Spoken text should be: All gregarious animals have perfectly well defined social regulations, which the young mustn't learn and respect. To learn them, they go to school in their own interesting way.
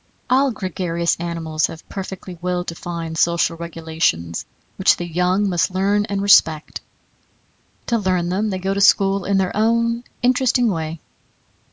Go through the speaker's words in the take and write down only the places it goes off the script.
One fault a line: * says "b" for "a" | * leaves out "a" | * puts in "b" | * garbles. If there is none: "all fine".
* says "must" for "mustn't"